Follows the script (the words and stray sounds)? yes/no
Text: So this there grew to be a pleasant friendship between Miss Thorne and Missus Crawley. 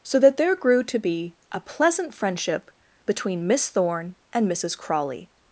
no